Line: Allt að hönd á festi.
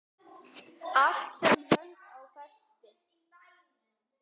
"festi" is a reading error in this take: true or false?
false